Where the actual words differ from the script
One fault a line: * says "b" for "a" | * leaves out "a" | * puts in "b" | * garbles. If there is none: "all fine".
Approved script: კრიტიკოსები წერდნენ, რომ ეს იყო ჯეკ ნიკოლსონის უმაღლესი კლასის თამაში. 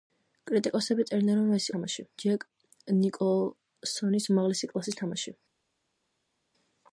* says "თამაში" for "იყო"